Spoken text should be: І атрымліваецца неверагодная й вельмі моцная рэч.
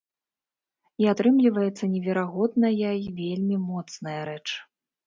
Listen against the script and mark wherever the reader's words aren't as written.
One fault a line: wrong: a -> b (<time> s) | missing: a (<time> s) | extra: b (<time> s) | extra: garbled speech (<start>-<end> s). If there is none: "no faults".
no faults